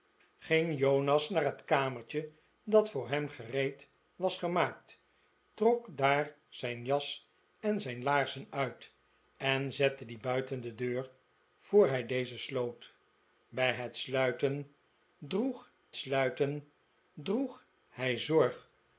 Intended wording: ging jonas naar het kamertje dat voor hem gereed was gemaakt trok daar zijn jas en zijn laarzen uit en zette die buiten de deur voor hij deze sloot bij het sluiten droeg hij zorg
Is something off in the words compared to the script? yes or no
yes